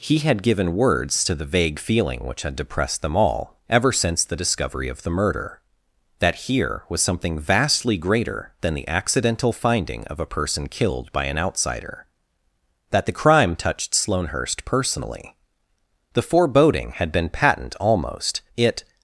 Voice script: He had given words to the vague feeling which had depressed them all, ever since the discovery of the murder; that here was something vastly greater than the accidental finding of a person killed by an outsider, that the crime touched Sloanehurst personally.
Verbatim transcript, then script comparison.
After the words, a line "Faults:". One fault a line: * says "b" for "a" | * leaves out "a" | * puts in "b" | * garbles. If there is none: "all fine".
He had given words to the vague feeling which had depressed them all, ever since the discovery of the murder; that here was something vastly greater than the accidental finding of a person killed by an outsider, that the crime touched Sloanehurst personally. The foreboding had been patent almost, it
Faults:
* puts in "The foreboding had been patent almost it"